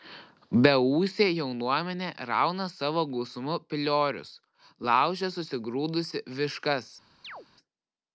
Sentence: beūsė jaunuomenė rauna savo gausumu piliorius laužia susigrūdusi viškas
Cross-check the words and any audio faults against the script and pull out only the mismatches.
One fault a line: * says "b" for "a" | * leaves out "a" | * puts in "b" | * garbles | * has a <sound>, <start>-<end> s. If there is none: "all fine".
* has a chirp, 7.2-7.5 s